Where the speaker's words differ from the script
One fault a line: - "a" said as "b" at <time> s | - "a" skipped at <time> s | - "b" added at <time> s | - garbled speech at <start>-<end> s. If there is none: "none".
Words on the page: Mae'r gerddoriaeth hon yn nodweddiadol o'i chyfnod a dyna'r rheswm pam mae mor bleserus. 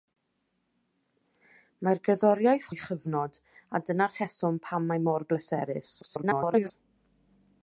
- "hon yn nodweddiadol" skipped at 2.6 s
- garbled speech at 6.0-6.7 s